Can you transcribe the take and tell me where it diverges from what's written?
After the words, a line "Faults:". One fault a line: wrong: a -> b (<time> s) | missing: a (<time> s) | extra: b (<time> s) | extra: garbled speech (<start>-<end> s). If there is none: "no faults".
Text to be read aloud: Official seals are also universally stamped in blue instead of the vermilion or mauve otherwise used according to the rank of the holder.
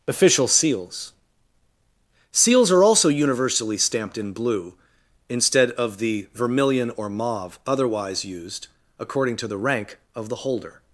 Official seals seals are also universally stamped in blue instead of the vermilion or mauve otherwise used according to the rank of the holder.
Faults:
extra: seals (2.3 s)